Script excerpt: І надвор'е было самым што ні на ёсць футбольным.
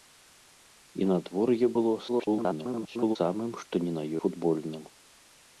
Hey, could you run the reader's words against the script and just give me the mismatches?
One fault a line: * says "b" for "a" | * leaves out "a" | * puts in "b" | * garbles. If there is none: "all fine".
* garbles
* leaves out "ёсць"